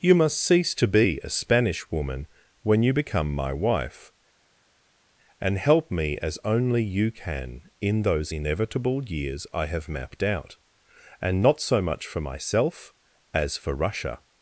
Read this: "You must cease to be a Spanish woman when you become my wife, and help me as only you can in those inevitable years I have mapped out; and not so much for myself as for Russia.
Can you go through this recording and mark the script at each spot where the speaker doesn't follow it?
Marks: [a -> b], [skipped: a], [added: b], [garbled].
"You must cease to be a Spanish woman when you become my wife, and help me as only you can in those inevitable years I have mapped out; and not so much for myself as for Russia.